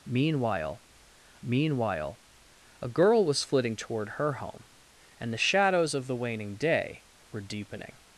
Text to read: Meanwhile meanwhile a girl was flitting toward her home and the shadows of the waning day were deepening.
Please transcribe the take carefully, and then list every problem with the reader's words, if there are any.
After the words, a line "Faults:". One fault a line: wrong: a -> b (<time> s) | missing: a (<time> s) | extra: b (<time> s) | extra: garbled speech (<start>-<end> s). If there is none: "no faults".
Meanwhile meanwhile a girl was flitting toward her home and the shadows of the waning day were deepening.
Faults:
no faults